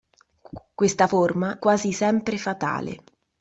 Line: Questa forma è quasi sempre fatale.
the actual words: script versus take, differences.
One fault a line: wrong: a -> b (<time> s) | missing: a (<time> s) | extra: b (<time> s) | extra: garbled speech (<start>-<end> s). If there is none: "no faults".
missing: è (1.6 s)